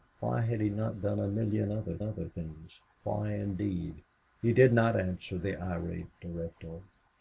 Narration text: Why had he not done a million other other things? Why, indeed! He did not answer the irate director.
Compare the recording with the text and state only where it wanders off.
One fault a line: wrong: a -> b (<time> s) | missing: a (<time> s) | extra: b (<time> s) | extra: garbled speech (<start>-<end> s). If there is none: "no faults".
no faults